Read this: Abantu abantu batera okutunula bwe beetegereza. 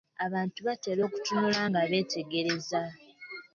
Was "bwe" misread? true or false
true